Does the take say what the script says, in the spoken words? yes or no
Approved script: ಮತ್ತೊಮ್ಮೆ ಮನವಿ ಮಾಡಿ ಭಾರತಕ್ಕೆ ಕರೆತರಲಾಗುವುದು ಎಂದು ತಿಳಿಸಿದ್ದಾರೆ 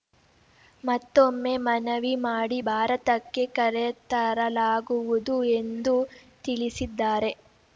yes